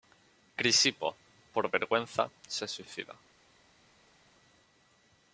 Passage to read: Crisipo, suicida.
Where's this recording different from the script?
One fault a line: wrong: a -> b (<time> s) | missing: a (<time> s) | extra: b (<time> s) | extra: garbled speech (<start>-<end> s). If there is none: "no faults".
extra: por vergüenza se (1.5 s)